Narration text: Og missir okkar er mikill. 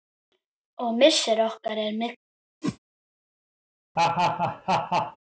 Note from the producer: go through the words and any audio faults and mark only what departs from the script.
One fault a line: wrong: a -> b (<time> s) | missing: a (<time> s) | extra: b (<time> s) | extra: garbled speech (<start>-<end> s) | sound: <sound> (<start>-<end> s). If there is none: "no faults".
sound: whoosh (2.6-2.8 s)
sound: laugh (4.0-5.2 s)